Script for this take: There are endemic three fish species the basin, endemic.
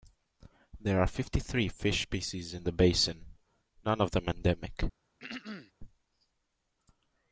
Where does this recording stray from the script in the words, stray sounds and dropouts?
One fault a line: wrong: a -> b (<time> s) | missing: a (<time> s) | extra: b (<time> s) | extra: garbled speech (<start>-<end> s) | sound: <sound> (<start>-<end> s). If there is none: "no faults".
wrong: endemic -> fifty (1.1 s)
extra: in (2.5 s)
extra: none of them (3.8 s)
sound: throat clearing (5.2-5.7 s)